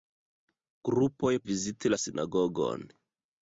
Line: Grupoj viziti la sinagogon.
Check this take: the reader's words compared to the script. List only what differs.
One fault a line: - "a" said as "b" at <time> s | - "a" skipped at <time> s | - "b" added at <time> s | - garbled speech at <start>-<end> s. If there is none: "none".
none